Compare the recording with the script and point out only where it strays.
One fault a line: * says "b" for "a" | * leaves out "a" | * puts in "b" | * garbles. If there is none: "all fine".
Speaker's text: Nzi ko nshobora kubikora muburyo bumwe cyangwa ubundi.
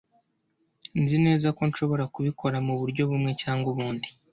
* puts in "neza"